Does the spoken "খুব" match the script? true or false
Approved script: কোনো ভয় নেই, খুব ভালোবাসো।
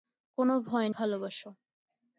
false